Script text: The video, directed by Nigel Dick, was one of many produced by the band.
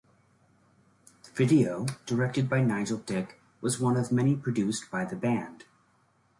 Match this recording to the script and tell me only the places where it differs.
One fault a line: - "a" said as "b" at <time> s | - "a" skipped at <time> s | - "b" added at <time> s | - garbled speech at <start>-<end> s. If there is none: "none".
none